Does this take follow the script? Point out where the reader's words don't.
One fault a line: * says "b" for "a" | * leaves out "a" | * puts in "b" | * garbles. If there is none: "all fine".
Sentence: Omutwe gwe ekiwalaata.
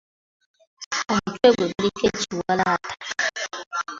* puts in "guliko"